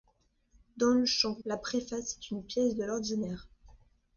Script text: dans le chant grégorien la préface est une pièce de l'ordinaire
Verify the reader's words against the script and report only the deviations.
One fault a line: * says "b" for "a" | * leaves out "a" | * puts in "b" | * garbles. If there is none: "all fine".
* leaves out "grégorien"